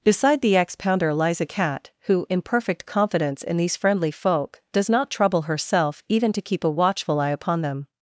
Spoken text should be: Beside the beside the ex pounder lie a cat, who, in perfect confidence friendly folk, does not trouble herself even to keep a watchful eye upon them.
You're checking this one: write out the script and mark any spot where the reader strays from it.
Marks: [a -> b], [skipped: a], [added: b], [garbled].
Beside the [skipped: beside the] ex pounder [lie -> lies] a cat, who, in perfect confidence [added: in these] friendly folk, does not trouble herself even to keep a watchful eye upon them.